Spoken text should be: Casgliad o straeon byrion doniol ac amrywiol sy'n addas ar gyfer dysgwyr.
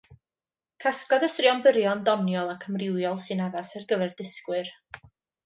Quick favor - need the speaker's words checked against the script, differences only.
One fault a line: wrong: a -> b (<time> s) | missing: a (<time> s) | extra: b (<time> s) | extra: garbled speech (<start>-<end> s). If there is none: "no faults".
no faults